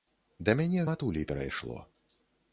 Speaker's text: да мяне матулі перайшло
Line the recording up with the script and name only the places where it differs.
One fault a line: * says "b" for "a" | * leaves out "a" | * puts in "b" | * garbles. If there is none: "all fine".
all fine